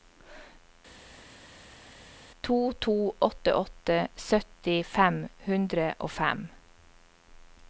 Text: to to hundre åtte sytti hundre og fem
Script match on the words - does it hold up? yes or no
no